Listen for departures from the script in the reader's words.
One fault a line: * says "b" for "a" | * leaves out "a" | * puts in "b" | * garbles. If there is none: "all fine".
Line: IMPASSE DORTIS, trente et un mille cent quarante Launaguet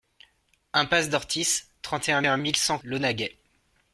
* puts in "un"
* leaves out "quarante"